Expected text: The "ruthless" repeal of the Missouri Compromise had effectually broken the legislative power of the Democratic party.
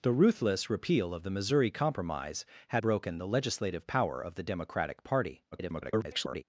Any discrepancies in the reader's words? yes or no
yes